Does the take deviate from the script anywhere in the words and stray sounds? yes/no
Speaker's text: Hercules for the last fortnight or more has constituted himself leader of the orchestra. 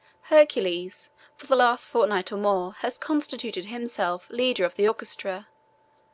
no